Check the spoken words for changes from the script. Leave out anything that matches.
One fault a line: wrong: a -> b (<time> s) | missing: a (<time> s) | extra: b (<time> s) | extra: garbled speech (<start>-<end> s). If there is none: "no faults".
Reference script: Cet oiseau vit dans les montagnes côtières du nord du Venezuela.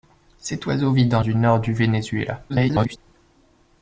missing: les montagnes côtières (1.2 s)
extra: garbled speech (2.5-3.0 s)